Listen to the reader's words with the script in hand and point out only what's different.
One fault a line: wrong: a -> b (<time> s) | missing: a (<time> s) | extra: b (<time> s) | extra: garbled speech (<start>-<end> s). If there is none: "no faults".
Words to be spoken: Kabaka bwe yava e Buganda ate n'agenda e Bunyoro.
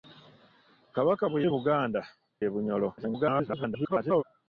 missing: yava (1.4 s)
missing: ate n'agenda (2.0 s)
extra: garbled speech (3.0-4.2 s)